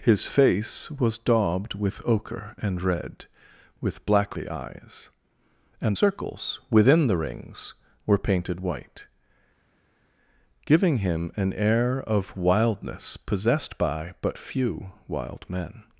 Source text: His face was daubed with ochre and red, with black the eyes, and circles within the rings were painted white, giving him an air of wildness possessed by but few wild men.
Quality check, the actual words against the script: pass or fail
pass